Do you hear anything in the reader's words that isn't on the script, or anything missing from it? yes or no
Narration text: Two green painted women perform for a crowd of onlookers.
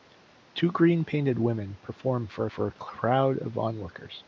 yes